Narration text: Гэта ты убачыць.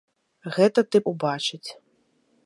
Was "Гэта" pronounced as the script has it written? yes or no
yes